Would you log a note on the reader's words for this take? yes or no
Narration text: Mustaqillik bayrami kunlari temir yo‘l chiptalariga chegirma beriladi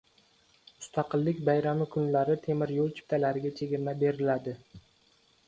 no